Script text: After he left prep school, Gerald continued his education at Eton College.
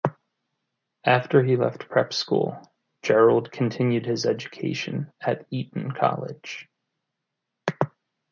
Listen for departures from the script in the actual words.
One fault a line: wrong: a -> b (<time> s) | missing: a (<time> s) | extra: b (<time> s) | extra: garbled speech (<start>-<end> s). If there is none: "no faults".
no faults